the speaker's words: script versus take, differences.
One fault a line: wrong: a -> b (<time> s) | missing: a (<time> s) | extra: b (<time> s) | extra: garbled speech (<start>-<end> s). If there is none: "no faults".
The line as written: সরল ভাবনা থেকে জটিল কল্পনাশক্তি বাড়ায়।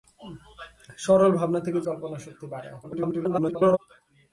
missing: জটিল (1.8 s)
extra: garbled speech (2.8-3.8 s)